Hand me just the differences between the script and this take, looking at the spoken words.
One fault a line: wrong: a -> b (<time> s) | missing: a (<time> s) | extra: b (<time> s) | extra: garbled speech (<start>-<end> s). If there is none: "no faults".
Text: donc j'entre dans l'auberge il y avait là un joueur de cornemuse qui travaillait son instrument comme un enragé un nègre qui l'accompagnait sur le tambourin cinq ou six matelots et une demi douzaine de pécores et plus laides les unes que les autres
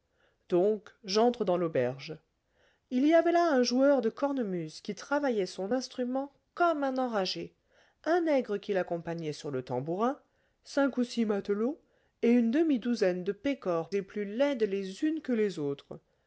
no faults